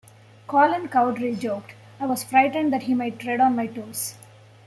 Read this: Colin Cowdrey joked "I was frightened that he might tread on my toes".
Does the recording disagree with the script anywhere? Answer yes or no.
no